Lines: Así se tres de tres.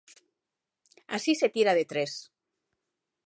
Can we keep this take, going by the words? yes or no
no